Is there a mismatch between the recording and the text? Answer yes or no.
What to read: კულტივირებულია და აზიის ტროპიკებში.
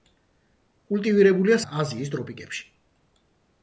no